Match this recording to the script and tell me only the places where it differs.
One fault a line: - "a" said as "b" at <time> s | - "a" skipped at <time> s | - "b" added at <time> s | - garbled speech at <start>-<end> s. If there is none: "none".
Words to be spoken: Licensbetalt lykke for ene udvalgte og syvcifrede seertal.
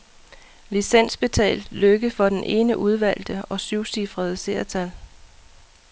- "den" added at 2.3 s